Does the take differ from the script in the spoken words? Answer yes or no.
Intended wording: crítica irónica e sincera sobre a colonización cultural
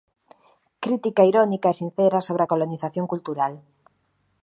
no